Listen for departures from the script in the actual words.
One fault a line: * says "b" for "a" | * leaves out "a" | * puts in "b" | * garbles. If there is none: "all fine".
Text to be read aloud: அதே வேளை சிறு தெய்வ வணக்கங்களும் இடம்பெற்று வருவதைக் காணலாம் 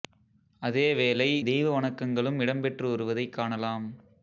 * leaves out "சிறு"